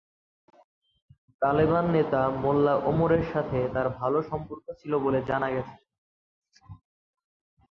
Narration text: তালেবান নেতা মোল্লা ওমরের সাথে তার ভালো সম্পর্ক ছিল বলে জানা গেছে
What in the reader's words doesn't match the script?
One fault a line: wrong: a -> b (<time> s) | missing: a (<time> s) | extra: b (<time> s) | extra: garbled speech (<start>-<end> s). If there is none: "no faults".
no faults